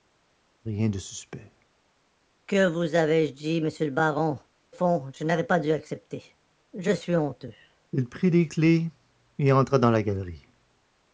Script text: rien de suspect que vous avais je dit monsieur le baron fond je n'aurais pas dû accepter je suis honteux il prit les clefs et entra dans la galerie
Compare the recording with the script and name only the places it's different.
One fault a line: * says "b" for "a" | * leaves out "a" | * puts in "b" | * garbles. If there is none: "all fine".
all fine